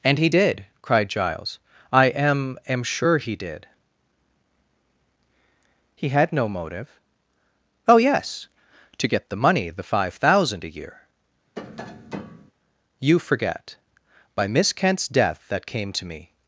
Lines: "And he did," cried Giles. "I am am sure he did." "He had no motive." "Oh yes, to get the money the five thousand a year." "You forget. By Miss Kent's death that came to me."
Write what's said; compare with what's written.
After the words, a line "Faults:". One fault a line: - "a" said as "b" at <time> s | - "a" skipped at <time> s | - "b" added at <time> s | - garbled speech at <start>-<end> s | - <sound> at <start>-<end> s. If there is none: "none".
"And he did," cried Giles. "I am am sure he did." "He had no motive." "Oh yes, to get the money the five thousand a year." "You forget. By Miss Kent's death that came to me."
Faults:
- tap at 11.6-12.5 s